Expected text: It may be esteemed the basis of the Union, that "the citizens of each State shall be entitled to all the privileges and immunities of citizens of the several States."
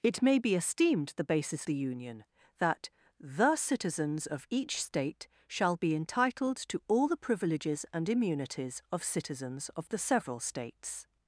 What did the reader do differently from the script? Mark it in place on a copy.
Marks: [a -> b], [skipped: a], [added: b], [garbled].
It may be esteemed the basis [skipped: of] the Union, that "the citizens of each State shall be entitled to all the privileges and immunities of citizens of the several States."